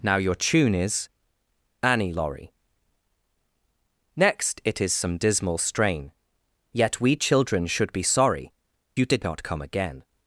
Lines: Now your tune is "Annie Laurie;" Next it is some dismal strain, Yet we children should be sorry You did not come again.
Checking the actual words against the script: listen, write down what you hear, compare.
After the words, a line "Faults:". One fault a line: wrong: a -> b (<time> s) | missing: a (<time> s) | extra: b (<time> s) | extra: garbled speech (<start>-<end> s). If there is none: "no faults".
Now your tune is "Annie Laurie;" Next it is some dismal strain, Yet we children should be sorry You did not come again.
Faults:
no faults